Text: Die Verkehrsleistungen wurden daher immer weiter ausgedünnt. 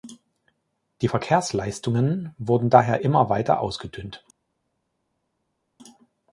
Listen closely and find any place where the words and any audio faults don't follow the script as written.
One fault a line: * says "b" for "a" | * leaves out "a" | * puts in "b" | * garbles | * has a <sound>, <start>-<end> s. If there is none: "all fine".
all fine